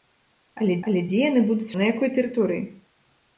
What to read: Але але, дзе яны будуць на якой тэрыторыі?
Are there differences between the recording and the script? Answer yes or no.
no